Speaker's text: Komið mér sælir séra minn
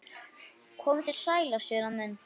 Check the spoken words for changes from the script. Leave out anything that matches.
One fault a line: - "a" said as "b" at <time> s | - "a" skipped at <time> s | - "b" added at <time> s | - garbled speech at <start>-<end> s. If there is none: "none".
- "mér" said as "þér" at 1.1 s